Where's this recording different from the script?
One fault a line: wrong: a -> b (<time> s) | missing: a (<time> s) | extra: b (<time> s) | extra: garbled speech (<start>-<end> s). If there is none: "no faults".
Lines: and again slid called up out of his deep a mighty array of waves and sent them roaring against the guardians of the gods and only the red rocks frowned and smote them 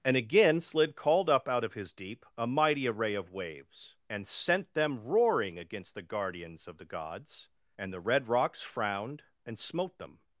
missing: only (7.9 s)